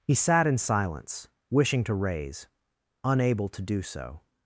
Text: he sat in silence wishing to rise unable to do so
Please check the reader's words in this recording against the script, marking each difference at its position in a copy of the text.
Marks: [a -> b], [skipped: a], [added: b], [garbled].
he sat in silence wishing to [rise -> raise] unable to do so